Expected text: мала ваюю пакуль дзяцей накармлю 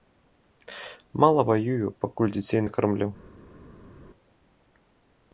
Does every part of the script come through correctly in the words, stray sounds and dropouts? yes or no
yes